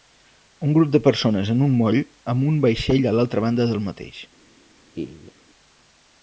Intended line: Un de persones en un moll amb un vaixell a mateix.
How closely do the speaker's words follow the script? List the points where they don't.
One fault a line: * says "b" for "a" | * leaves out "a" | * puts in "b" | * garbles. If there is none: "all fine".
* puts in "grup"
* puts in "l'altra banda del"